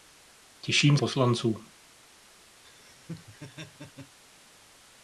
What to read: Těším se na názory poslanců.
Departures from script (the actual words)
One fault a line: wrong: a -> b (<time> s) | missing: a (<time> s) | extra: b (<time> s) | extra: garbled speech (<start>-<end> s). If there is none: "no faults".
missing: se na názory (1.0 s)